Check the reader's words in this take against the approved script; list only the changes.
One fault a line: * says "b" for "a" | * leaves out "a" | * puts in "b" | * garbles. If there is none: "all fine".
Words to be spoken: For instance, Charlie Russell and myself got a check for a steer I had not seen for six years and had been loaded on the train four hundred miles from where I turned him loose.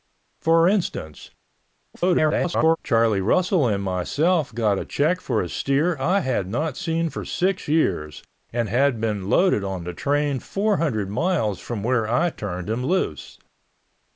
* garbles